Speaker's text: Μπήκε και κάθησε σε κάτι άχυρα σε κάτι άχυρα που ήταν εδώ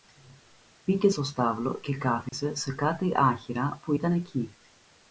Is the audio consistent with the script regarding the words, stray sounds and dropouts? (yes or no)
no